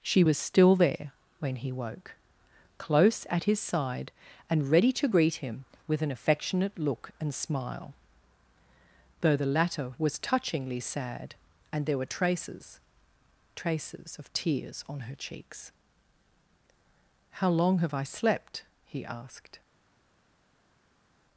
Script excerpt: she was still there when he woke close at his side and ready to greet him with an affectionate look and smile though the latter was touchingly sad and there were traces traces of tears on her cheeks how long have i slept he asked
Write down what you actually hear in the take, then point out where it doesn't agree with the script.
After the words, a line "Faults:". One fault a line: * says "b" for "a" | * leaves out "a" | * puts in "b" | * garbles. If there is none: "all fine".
she was still there when he woke close at his side and ready to greet him with an affectionate look and smile though the latter was touchingly sad and there were traces traces of tears on her cheeks how long have i slept he asked
Faults:
all fine